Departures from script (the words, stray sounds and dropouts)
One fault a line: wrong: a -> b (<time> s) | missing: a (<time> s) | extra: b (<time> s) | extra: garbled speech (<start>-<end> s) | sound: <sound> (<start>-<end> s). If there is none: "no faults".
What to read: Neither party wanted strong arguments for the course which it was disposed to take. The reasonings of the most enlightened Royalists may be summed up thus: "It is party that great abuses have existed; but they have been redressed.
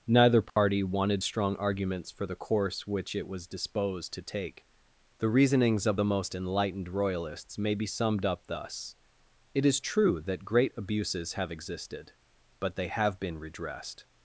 sound: dropout (0.5-0.6 s)
wrong: party -> true (9.8 s)